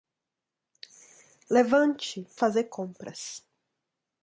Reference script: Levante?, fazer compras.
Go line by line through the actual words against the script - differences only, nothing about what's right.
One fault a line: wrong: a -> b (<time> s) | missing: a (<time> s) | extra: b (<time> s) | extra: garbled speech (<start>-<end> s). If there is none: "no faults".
no faults